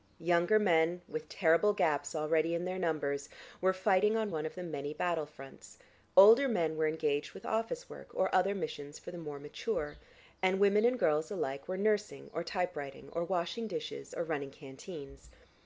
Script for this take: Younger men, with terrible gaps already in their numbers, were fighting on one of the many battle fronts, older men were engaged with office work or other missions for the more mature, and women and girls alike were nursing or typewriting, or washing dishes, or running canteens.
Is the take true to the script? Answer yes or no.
yes